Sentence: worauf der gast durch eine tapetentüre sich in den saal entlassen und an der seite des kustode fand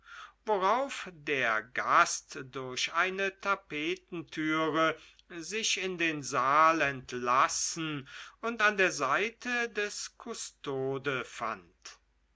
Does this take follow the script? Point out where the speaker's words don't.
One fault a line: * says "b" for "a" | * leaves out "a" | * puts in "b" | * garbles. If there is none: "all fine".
all fine